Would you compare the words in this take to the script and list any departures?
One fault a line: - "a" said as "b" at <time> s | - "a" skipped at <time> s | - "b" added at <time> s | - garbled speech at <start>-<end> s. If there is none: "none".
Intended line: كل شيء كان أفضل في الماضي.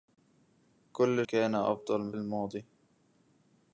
- "شيء" skipped at 1.2 s
- "في" skipped at 2.1 s